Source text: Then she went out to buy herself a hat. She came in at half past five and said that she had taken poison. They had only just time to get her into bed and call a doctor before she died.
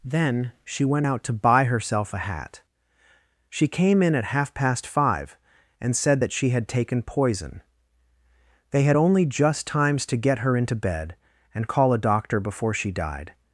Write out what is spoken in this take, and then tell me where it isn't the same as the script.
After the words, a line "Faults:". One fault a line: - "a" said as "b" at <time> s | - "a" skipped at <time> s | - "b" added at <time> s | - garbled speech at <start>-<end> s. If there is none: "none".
Then she went out to buy herself a hat. She came in at half past five and said that she had taken poison. They had only just times to get her into bed and call a doctor before she died.
Faults:
- "time" said as "times" at 9.7 s